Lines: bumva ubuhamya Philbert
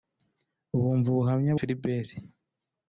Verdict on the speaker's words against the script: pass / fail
pass